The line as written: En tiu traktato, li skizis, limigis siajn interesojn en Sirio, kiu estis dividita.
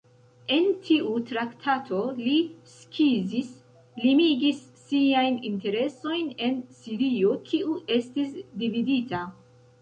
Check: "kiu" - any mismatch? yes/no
no